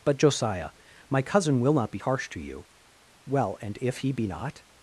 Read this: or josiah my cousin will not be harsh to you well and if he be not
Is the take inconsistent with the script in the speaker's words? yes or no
yes